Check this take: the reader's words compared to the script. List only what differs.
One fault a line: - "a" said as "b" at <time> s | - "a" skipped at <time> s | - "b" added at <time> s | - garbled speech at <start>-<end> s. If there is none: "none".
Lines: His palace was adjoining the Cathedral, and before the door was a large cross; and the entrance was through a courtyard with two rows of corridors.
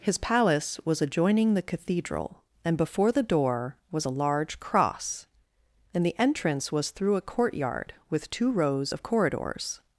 none